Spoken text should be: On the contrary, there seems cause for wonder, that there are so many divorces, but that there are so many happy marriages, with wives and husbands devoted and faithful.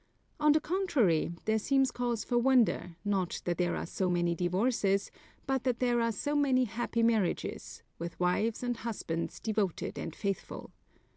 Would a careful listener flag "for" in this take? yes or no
no